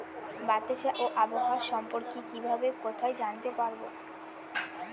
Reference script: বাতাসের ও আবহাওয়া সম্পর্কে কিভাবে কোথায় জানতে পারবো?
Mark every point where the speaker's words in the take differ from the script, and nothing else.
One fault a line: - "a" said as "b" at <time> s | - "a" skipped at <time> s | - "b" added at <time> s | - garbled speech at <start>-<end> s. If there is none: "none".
none